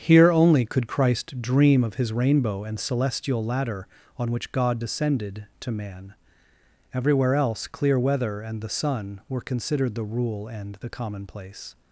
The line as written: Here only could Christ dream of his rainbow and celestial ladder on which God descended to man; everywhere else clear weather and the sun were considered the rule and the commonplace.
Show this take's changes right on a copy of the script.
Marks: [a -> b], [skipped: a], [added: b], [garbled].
Here only could Christ dream of his rainbow and celestial ladder on which God descended to man; everywhere else clear weather and the sun were considered the rule and the commonplace.